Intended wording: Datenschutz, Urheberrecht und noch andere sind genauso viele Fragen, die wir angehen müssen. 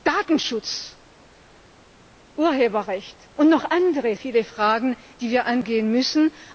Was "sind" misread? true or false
true